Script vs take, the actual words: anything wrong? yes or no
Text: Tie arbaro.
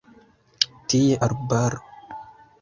no